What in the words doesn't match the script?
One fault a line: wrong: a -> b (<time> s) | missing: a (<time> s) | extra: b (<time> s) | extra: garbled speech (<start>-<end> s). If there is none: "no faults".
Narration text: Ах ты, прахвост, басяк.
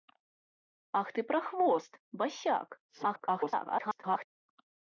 extra: garbled speech (2.9-4.3 s)